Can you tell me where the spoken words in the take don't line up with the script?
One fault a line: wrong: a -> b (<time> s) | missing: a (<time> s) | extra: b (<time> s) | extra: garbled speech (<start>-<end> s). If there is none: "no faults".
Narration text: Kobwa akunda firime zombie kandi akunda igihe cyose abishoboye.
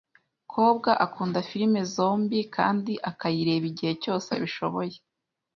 wrong: akunda -> akayireba (3.1 s)